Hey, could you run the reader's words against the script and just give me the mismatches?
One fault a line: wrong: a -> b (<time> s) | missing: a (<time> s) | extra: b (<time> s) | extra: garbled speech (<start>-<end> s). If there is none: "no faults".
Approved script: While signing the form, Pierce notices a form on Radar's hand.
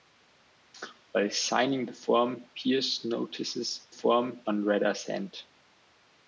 no faults